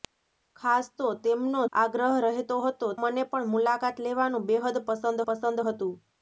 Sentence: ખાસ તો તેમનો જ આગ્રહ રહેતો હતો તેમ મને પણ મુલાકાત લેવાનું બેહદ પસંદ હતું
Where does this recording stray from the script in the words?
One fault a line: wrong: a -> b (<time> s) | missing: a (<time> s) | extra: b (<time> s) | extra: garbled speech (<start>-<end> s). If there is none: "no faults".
missing: જ (1.6 s)
missing: તેમ (2.9 s)
extra: પસંદ (5.3 s)